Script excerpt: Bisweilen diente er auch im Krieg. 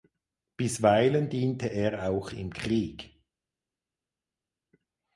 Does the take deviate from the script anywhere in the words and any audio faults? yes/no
no